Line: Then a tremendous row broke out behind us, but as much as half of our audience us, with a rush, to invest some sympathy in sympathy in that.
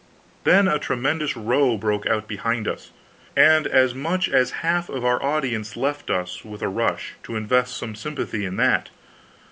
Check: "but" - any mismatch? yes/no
yes